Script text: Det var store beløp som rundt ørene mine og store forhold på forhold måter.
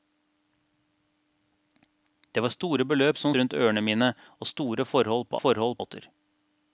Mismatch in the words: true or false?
false